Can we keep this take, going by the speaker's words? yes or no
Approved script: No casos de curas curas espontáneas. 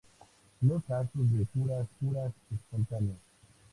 yes